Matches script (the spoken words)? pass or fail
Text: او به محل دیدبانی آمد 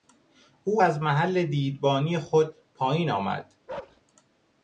fail